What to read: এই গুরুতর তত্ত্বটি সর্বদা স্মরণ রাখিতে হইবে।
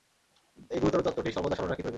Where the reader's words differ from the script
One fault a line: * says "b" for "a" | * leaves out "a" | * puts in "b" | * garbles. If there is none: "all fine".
all fine